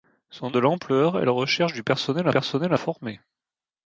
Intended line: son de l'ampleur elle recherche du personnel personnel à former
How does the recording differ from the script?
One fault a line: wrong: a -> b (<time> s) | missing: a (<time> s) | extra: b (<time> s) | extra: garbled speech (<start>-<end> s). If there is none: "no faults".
no faults